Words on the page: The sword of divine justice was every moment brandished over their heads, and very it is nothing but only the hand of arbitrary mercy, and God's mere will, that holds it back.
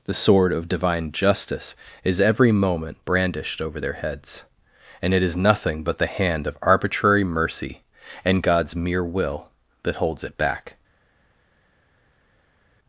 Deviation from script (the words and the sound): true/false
true